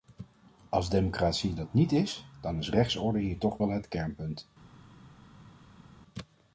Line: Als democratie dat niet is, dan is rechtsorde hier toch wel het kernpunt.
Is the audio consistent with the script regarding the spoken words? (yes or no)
yes